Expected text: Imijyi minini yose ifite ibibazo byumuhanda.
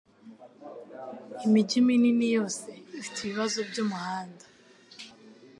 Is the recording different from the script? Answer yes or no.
no